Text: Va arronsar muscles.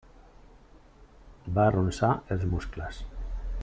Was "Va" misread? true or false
false